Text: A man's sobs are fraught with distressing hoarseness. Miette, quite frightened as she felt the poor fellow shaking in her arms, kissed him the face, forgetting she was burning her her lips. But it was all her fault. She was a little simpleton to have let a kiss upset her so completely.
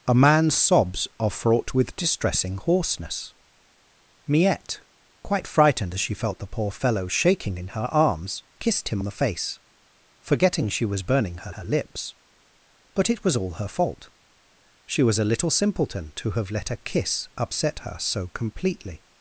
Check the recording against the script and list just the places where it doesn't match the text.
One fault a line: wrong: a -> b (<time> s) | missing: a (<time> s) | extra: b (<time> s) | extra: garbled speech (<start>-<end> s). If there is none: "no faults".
no faults